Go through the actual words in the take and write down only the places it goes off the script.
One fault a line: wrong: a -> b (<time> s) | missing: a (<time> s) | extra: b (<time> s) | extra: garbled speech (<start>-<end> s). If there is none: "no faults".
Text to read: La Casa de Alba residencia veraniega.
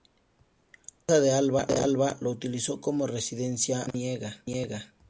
extra: lo utilizó como (2.2 s)